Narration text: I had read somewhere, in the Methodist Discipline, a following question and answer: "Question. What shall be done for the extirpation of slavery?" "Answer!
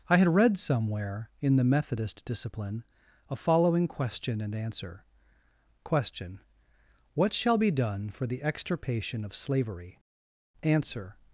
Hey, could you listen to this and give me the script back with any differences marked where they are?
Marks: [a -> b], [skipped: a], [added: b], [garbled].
I had read somewhere, in the Methodist Discipline, a following question and answer: "Question. What shall be done for the extirpation of slavery?" "Answer!